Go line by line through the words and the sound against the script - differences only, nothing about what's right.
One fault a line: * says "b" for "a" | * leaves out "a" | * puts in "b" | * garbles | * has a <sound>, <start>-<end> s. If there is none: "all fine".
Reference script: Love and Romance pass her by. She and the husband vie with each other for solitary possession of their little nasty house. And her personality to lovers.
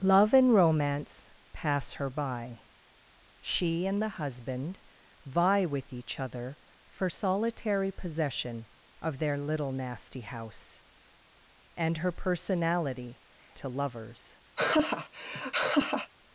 * has a laugh, 14.6-16.1 s